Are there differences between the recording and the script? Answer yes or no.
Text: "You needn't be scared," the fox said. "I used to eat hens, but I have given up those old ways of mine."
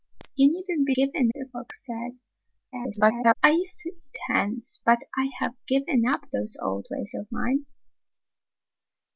yes